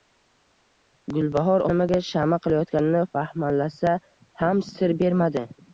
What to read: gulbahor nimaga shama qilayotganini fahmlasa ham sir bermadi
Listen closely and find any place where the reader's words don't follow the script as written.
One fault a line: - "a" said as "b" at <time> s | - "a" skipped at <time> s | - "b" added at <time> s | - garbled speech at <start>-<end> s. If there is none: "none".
none